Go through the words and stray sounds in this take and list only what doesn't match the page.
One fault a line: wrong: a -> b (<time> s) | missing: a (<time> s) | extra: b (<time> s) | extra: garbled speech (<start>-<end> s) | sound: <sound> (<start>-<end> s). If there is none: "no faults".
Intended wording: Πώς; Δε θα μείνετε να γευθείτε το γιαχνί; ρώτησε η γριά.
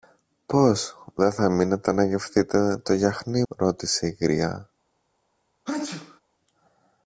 sound: sneeze (5.7-6.2 s)